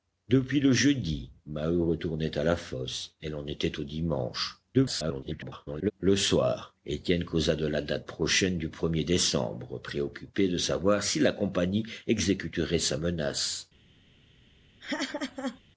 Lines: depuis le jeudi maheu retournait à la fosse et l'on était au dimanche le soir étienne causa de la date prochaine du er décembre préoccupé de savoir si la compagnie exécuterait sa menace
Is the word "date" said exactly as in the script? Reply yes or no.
yes